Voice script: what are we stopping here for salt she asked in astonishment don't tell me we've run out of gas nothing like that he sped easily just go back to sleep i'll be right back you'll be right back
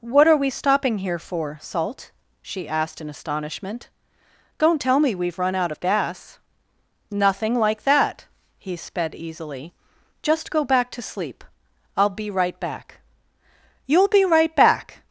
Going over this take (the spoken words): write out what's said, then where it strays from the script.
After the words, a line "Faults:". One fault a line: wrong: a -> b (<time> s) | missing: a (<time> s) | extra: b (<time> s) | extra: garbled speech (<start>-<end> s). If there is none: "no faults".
what are we stopping here for salt she asked in astonishment don't tell me we've run out of gas nothing like that he sped easily just go back to sleep i'll be right back you'll be right back
Faults:
no faults